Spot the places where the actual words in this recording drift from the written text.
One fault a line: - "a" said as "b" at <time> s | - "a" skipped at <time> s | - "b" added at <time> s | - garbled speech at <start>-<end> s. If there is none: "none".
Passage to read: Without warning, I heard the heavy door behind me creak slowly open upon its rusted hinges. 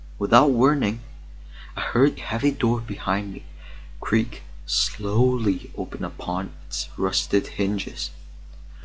- "the" skipped at 2.2 s